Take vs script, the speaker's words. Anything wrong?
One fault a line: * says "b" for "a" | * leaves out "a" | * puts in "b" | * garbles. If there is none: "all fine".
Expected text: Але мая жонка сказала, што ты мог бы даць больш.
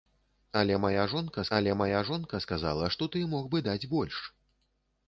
* puts in "але мая жонка"